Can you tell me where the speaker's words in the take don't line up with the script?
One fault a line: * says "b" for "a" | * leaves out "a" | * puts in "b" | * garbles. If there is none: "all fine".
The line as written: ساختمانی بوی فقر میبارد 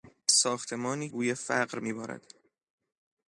all fine